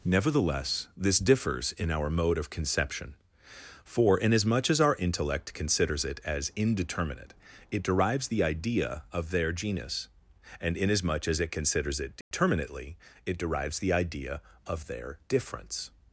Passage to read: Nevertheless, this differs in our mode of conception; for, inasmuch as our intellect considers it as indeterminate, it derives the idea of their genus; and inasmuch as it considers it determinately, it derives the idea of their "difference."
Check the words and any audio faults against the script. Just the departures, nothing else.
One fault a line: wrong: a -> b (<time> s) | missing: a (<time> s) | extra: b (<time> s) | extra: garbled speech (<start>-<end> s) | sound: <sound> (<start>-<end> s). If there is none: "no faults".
sound: dropout (12.2-12.3 s)